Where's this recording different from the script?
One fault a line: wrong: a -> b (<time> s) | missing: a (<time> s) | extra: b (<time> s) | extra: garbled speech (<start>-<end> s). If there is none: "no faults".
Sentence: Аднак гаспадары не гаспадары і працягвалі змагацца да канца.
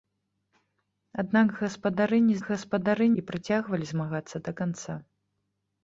no faults